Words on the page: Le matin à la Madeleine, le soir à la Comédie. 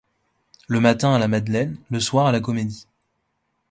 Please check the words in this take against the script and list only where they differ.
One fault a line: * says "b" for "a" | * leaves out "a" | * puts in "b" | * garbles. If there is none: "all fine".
all fine